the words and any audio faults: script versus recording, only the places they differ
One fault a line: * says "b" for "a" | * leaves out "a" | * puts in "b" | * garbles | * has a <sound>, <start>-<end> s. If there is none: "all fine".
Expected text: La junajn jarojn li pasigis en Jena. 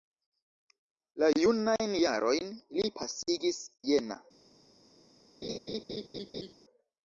* leaves out "en"
* has a laugh, 5.4-6.5 s